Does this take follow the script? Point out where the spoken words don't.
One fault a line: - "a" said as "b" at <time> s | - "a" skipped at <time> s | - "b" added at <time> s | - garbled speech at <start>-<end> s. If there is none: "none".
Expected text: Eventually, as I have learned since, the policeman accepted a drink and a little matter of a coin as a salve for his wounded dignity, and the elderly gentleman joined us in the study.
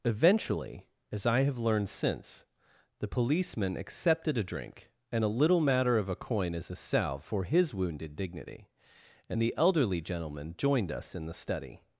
none